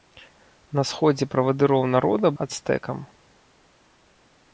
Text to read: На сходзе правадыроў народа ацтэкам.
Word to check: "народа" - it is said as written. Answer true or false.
true